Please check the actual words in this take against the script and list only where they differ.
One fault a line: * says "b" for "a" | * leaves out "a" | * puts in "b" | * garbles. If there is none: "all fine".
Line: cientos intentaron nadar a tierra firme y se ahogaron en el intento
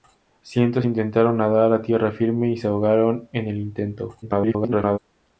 * garbles